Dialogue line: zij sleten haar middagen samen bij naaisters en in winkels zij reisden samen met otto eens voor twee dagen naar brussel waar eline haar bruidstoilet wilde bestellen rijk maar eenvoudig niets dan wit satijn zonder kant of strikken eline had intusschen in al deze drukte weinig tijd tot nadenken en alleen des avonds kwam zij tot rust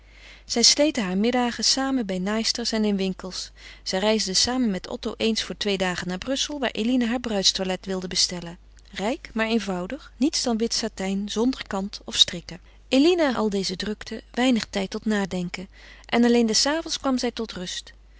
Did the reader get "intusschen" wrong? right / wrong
wrong